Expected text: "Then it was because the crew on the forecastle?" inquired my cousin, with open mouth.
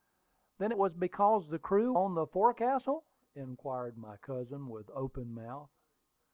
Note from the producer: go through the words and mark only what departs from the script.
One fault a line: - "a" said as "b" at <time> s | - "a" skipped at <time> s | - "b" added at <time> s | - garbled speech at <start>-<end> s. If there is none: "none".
none